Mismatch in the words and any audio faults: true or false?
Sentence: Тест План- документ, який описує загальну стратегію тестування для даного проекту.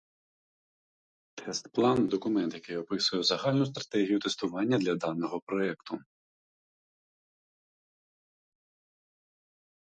false